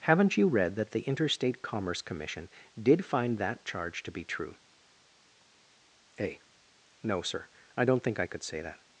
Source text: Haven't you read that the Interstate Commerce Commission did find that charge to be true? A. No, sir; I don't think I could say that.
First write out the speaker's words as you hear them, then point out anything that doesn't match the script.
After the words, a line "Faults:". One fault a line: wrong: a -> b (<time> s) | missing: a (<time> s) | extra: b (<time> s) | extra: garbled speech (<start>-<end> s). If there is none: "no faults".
Haven't you read that the Interstate Commerce Commission did find that charge to be true? A. No, sir; I don't think I could say that.
Faults:
no faults